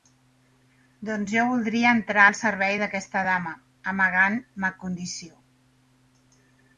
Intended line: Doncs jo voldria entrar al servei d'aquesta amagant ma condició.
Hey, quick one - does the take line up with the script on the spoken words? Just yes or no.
no